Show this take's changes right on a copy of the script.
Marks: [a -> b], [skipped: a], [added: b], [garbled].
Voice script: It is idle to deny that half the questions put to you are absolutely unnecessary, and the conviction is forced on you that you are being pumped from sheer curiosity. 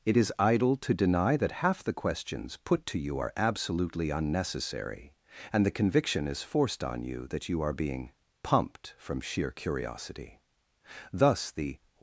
It is idle to deny that half the questions put to you are absolutely unnecessary, and the conviction is forced on you that you are being pumped from sheer curiosity. [added: Thus the]